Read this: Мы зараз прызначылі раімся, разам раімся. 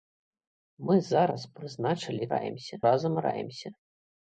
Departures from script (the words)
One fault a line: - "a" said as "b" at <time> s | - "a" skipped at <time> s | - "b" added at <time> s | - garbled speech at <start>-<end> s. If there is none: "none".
none